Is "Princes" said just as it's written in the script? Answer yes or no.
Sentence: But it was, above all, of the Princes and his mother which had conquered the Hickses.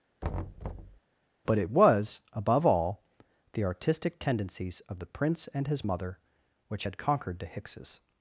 no